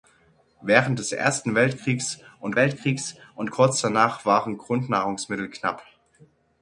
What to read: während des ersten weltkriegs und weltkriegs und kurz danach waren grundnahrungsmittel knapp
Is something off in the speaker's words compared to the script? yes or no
no